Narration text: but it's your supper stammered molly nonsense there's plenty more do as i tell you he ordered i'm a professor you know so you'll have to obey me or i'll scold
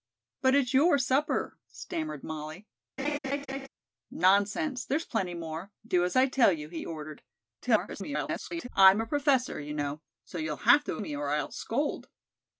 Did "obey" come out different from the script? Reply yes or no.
yes